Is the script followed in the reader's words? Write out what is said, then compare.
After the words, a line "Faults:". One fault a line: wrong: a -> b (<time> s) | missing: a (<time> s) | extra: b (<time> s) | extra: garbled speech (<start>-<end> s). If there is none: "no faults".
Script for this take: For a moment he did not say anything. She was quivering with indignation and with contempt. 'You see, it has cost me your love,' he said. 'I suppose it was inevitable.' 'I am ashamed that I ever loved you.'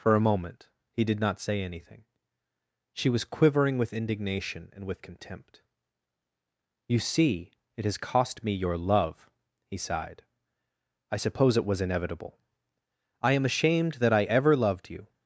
For a moment he did not say anything. She was quivering with indignation and with contempt. 'You see, it has cost me your love,' he sighed. 'I suppose it was inevitable.' 'I am ashamed that I ever loved you.'
Faults:
wrong: said -> sighed (9.8 s)